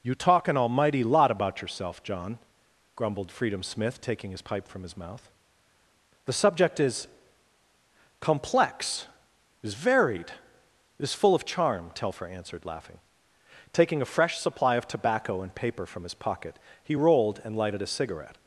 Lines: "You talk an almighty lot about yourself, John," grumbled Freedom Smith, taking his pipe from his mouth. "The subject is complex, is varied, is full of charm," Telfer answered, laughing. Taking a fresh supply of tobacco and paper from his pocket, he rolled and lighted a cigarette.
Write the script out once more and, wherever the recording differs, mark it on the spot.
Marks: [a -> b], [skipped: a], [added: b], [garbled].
"You talk an almighty lot about yourself, John," grumbled Freedom Smith, taking his pipe from his mouth. "The subject is complex, is varied, is full of charm," Telfer answered, laughing. Taking a fresh supply of tobacco and paper from his pocket, he rolled and lighted a cigarette.